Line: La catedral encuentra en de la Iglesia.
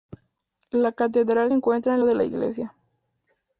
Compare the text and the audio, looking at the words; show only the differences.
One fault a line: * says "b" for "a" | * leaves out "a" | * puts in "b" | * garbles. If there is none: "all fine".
all fine